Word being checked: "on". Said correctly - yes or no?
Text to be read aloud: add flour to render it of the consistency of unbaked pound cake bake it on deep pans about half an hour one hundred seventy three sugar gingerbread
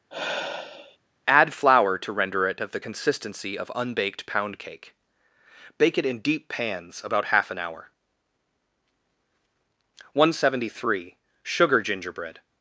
no